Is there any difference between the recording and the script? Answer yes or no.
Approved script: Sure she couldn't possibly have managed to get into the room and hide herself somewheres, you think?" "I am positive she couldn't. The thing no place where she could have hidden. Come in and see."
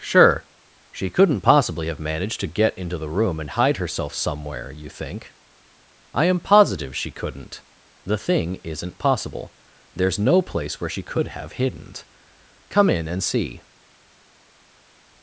yes